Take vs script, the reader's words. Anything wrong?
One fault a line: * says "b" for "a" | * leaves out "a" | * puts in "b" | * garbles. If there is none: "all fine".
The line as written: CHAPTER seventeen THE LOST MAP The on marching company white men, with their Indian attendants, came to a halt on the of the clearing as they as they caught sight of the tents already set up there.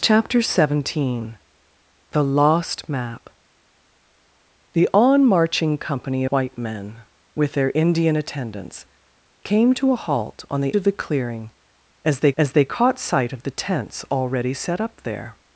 all fine